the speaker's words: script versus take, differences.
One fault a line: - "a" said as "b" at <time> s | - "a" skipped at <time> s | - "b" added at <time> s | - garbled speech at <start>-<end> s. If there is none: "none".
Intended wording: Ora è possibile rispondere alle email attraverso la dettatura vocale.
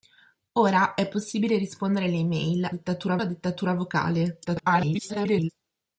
- "attraverso" said as "dettatura" at 2.7 s
- garbled speech at 4.4-5.5 s